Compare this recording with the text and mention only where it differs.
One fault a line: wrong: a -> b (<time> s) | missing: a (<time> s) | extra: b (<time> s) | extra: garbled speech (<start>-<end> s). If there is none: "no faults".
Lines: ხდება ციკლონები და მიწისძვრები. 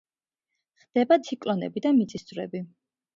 no faults